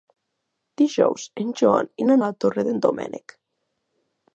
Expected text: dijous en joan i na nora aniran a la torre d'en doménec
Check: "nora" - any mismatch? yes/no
yes